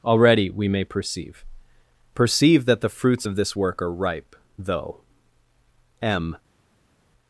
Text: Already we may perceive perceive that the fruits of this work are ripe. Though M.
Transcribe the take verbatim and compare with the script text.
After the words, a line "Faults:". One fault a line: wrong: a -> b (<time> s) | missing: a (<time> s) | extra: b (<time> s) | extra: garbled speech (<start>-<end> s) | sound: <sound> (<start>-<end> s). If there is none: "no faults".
Already we may perceive perceive that the fruits of this work are ripe. Though M.
Faults:
no faults